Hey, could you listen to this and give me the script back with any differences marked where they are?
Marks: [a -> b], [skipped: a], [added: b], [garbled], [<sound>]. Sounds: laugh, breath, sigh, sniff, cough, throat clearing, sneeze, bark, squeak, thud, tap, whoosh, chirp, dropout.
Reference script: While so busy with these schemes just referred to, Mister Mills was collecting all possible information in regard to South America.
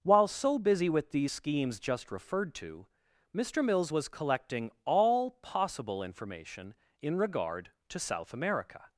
While so busy with these schemes just referred to, Mister Mills was collecting all possible information in regard to South America.